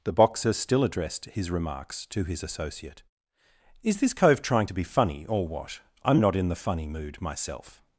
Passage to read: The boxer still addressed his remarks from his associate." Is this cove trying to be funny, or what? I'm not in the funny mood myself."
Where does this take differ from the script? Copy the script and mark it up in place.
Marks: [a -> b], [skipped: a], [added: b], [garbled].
The boxer still addressed his remarks [from -> to] his associate." Is this cove trying to be funny, or what? I'm not in the funny mood myself."